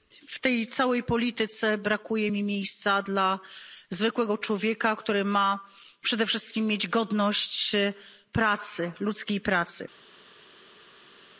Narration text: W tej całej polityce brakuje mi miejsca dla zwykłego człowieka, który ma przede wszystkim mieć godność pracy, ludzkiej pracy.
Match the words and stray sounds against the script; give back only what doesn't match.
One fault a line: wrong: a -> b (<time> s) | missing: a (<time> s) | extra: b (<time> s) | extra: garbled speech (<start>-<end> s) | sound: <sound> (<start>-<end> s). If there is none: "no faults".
no faults